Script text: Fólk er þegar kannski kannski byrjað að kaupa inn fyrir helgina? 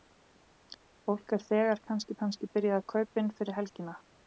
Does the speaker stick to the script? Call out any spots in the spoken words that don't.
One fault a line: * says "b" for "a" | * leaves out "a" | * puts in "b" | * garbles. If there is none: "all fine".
all fine